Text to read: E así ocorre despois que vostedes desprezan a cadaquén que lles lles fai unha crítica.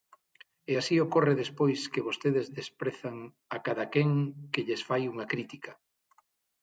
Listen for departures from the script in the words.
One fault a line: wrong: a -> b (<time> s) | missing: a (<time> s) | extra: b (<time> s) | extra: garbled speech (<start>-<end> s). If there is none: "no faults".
missing: lles (4.8 s)